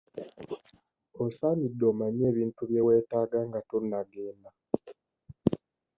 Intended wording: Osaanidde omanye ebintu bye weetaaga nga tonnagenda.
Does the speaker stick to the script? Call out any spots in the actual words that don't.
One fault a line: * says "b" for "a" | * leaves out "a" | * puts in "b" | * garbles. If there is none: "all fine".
all fine